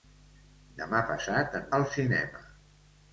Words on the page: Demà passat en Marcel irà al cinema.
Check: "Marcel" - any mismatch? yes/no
yes